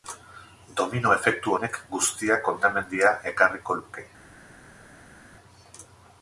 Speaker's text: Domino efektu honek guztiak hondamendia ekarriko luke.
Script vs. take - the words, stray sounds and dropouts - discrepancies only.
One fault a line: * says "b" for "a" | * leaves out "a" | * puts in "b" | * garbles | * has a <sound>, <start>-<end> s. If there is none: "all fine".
all fine